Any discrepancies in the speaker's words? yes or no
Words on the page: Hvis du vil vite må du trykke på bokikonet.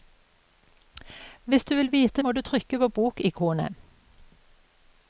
no